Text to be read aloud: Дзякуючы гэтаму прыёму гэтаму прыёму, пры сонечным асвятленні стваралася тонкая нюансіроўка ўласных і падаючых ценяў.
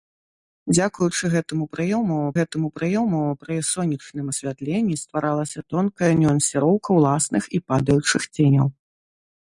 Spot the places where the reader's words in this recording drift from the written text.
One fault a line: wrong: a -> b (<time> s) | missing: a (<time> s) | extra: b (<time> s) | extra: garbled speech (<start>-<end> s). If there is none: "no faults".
no faults